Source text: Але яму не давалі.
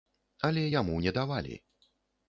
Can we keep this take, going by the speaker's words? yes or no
yes